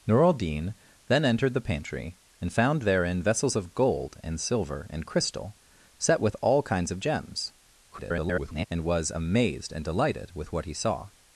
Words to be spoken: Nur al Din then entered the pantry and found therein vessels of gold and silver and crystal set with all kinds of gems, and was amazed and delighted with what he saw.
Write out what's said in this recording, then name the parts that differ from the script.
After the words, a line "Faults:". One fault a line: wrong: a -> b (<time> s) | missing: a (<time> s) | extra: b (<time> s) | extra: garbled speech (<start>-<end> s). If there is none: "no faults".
Nur al Din then entered the pantry and found therein vessels of gold and silver and crystal set with all kinds of gems, [garbled] and was amazed and delighted with what he saw.
Faults:
extra: garbled speech (7.9-8.7 s)